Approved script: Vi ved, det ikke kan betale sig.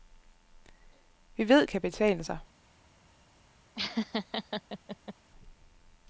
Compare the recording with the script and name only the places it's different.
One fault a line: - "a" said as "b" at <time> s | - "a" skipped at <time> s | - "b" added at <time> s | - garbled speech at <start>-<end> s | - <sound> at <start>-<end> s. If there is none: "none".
- "det ikke" skipped at 1.7 s
- laugh at 3.7-5.1 s